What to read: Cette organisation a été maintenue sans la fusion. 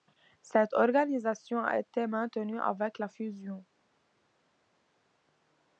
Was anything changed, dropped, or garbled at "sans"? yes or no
yes